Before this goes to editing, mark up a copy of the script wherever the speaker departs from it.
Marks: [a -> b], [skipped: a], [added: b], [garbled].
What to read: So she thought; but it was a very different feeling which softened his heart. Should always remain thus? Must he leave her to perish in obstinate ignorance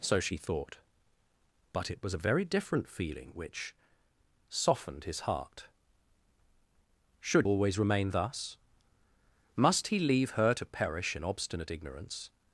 So she thought; but it was a very different feeling which softened his heart. Should always remain thus? Must he leave her to perish in obstinate ignorance